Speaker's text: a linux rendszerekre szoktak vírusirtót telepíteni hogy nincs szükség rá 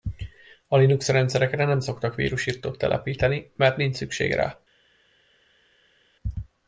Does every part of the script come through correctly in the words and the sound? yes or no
no